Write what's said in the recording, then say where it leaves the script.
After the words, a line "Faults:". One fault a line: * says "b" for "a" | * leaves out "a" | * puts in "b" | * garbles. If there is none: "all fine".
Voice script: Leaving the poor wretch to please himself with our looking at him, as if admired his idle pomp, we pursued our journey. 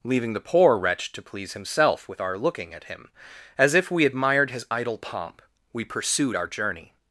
Leaving the poor wretch to please himself with our looking at him, as if we admired his idle pomp, we pursued our journey.
Faults:
* puts in "we"